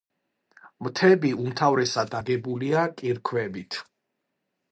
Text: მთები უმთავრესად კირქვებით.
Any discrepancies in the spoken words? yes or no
yes